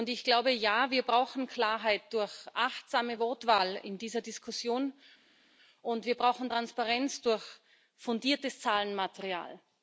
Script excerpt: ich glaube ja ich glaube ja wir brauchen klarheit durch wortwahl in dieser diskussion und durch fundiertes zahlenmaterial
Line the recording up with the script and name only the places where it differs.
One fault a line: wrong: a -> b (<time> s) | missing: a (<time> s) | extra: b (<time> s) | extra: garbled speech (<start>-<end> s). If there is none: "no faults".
missing: ich glaube ja (0.9 s)
extra: achtsame (2.5 s)
extra: wir brauchen transparenz (6.0 s)